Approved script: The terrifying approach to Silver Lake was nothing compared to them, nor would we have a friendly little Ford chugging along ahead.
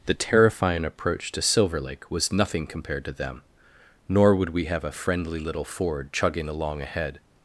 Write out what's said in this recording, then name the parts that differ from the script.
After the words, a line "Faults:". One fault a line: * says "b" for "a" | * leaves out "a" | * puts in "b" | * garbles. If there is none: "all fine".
The terrifying approach to Silver Lake was nothing compared to them, nor would we have a friendly little Ford chugging along ahead.
Faults:
all fine